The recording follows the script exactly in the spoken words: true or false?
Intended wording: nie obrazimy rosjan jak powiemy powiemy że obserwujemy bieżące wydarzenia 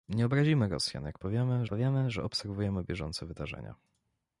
true